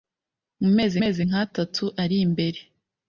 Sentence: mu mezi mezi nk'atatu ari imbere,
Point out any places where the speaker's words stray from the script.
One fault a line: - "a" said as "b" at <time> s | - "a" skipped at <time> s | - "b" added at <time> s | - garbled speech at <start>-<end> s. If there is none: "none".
none